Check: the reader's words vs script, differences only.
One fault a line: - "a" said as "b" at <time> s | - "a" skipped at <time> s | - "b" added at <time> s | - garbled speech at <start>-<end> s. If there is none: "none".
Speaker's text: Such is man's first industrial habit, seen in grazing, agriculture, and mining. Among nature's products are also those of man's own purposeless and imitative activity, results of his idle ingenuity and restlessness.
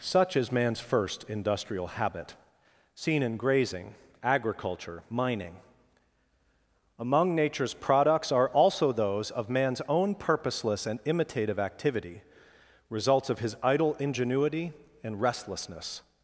- "and" skipped at 5.0 s